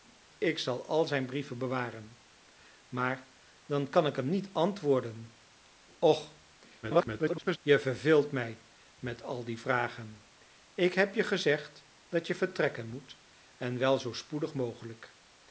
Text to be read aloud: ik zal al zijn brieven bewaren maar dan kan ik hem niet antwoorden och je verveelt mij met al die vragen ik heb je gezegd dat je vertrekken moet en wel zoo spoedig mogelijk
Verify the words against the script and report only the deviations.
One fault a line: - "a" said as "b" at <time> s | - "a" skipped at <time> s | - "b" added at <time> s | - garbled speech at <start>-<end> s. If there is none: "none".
- garbled speech at 6.8-7.6 s